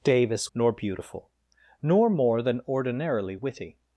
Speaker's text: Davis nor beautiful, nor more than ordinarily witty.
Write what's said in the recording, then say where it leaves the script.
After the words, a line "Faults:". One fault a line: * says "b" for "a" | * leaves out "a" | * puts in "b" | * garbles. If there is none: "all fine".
Davis nor beautiful, nor more than ordinarily witty.
Faults:
all fine